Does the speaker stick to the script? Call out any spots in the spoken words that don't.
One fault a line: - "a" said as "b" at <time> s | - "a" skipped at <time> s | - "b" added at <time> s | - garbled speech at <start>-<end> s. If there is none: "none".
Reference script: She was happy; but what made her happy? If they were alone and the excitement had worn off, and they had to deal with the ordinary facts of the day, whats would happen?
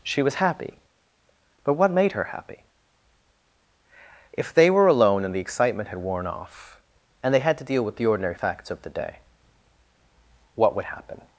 - "whats" said as "what" at 10.6 s